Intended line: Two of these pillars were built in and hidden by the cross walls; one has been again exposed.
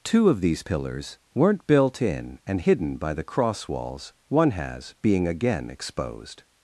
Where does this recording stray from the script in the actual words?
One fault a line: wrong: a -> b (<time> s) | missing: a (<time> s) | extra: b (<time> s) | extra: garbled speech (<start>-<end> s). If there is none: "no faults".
wrong: were -> weren't (1.3 s)
wrong: been -> being (5.0 s)